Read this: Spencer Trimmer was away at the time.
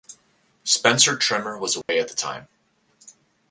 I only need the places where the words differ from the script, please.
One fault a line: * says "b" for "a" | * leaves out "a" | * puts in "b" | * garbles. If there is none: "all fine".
all fine